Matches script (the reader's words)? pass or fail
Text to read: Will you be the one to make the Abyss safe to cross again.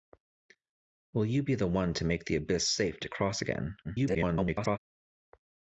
fail